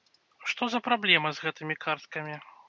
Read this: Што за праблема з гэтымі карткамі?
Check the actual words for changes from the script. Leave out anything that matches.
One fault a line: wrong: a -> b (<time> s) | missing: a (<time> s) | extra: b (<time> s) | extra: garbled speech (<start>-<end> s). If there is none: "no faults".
no faults